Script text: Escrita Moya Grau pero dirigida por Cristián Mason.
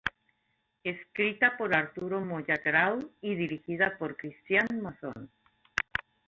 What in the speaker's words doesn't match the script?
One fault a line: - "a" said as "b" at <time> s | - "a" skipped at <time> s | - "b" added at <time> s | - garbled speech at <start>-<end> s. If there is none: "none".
- "por Arturo" added at 1.6 s
- "pero" said as "y" at 3.2 s